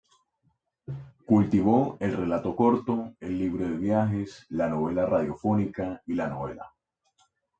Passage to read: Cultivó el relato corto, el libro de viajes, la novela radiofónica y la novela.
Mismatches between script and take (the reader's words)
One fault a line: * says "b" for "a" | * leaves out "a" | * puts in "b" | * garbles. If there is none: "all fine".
all fine